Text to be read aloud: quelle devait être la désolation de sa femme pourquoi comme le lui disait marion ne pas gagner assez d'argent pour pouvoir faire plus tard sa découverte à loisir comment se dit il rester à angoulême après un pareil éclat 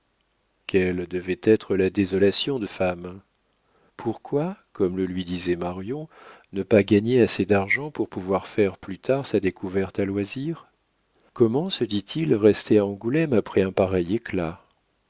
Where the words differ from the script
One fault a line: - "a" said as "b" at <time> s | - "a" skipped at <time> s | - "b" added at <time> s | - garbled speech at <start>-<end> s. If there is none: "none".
- "sa" skipped at 2.6 s